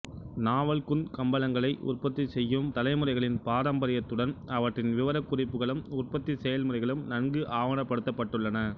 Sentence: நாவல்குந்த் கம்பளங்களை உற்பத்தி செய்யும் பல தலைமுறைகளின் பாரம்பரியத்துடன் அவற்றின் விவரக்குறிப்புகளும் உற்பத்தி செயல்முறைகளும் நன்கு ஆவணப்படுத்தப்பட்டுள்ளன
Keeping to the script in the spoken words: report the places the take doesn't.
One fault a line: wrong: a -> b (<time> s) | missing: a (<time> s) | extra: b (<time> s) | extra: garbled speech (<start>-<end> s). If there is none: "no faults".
missing: பல (2.7 s)